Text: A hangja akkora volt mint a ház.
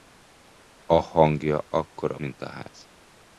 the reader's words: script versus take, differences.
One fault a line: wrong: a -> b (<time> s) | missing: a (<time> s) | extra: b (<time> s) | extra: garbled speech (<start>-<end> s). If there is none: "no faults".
missing: volt (2.2 s)